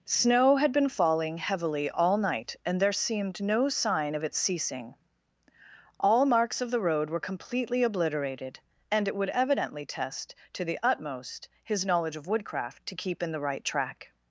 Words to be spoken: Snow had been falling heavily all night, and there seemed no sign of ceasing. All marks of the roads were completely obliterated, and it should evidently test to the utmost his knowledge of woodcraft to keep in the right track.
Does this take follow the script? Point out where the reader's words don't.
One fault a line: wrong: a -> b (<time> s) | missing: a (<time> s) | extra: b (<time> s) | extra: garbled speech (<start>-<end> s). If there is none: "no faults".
extra: its (4.2 s)
wrong: roads -> road (6.8 s)
wrong: should -> would (9.2 s)